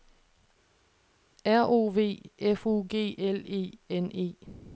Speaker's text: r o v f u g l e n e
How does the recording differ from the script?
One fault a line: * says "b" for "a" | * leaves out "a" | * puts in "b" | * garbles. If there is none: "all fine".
all fine